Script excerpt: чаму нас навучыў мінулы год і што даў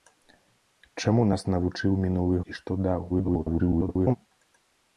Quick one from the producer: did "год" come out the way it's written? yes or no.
no